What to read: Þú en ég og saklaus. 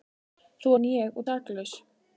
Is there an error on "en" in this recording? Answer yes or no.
no